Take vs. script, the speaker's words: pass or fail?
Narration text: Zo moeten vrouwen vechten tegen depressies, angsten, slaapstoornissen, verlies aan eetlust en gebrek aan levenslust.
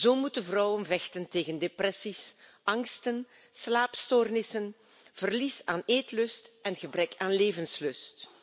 pass